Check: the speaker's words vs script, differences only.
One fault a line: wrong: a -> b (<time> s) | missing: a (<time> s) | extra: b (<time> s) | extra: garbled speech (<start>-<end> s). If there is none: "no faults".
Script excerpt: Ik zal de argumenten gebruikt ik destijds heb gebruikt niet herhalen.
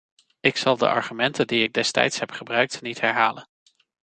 wrong: gebruikt -> die (1.5 s)